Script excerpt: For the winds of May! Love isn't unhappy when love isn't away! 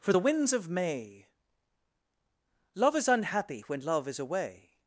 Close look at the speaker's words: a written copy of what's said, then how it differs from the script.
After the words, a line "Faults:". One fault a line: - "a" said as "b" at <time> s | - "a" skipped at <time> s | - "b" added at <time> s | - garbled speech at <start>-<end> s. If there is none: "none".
For the winds of May! Love is unhappy when love is away!
Faults:
- "isn't" said as "is" at 2.9 s
- "isn't" said as "is" at 4.1 s